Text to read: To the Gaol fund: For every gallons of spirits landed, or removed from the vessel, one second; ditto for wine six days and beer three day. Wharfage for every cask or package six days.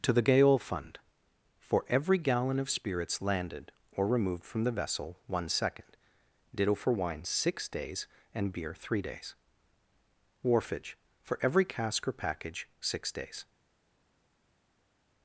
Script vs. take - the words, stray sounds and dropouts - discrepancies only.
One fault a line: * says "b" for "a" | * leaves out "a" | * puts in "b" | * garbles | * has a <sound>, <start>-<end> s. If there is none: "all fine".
* says "gallon" for "gallons"
* says "days" for "day"